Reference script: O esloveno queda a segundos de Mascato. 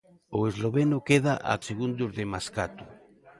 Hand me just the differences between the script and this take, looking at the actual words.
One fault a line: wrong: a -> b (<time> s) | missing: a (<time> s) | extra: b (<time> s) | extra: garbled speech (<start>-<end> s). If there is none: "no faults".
no faults